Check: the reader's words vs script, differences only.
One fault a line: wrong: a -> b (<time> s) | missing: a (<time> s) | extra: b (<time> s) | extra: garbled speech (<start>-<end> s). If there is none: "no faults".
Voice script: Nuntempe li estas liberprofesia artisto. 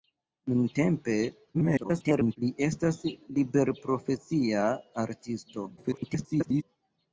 extra: garbled speech (1.5-2.4 s)
extra: garbled speech (5.8-6.6 s)